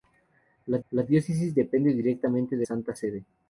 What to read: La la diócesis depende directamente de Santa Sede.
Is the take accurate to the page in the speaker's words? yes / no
yes